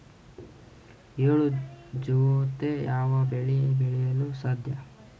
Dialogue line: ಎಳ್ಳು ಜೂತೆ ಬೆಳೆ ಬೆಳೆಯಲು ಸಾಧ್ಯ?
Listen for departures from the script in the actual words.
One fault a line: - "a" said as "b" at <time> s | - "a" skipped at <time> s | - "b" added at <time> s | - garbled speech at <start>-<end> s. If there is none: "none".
- "ಯಾವ" added at 2.8 s